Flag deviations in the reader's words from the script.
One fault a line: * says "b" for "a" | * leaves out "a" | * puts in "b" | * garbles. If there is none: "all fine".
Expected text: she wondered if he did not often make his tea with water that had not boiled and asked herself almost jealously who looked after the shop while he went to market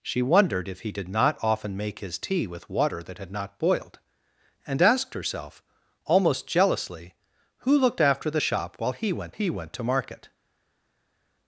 * puts in "he went"